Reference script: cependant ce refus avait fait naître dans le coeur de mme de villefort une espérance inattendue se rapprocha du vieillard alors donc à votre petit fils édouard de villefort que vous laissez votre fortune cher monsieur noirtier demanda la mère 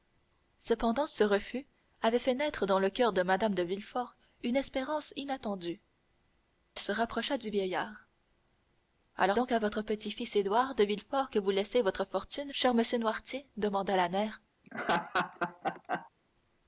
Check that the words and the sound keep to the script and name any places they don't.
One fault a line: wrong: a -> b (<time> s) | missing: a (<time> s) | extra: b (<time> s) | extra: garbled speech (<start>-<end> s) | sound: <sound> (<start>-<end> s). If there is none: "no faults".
sound: laugh (14.6-16.1 s)